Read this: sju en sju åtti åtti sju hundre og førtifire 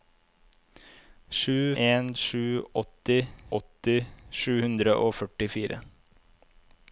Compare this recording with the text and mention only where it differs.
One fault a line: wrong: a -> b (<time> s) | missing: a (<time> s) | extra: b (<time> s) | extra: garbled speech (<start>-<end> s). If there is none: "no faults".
no faults